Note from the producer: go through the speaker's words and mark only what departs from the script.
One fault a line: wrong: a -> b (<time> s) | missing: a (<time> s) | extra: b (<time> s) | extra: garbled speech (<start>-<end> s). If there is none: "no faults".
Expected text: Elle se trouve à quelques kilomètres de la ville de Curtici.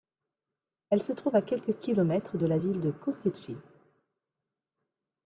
no faults